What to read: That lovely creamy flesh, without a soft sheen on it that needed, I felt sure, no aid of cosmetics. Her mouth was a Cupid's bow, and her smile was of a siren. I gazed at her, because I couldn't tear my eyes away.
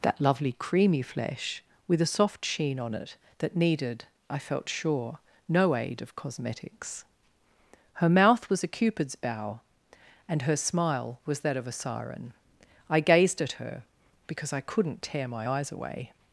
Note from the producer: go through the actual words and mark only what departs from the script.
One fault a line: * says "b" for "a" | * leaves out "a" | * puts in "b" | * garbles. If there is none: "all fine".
* says "with" for "without"
* puts in "that"